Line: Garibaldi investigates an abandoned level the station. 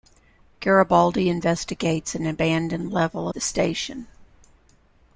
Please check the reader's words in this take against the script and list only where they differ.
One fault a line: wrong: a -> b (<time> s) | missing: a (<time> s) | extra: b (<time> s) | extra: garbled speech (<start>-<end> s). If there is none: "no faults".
no faults